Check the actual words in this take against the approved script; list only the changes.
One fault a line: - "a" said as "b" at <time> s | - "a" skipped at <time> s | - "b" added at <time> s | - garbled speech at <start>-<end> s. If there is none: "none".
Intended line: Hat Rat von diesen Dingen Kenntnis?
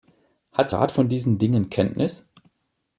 none